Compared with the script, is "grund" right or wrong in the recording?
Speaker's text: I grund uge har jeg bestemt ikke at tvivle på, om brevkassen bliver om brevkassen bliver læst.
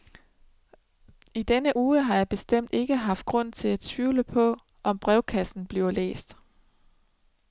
wrong